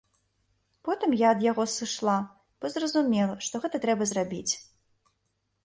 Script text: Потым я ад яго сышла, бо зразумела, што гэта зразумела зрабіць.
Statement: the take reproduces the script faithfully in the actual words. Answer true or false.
false